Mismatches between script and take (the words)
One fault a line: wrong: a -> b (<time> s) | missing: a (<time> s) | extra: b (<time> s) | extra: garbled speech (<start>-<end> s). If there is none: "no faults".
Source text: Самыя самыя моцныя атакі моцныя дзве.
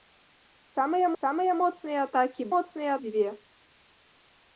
no faults